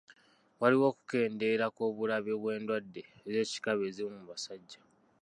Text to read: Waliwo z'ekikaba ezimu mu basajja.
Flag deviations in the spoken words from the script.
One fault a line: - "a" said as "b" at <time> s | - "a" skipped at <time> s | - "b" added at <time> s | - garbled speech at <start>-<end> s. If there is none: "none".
- "okukendeera kw'obulabe bw'endwadde" added at 0.9 s